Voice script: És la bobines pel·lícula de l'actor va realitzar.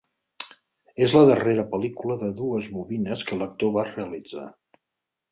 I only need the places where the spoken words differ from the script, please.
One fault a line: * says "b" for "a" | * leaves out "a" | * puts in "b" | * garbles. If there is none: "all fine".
* says "darrera" for "bobines"
* puts in "dues bobines que"